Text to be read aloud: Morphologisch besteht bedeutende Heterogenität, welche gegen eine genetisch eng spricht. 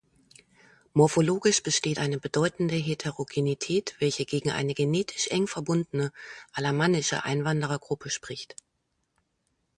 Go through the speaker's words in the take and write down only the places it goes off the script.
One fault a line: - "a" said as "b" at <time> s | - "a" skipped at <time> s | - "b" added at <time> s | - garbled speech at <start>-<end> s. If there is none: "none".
- "eine" added at 2.0 s
- "verbundene alamannische Einwanderergruppe" added at 5.5 s